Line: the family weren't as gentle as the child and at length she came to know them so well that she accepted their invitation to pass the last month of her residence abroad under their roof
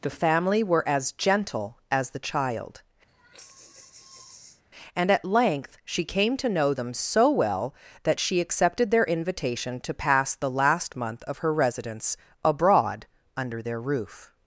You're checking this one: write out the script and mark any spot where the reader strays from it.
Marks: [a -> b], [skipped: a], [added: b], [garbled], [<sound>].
the family [weren't -> were] as gentle as the child [sigh] and at length she came to know them so well that she accepted their invitation to pass the last month of her residence abroad under their roof